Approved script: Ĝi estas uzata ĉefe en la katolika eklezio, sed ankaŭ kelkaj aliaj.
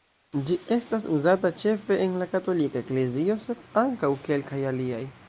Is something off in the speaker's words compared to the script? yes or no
no